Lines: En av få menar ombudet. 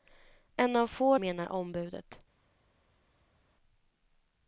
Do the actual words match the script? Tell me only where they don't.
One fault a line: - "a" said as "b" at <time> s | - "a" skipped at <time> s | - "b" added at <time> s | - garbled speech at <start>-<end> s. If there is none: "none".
none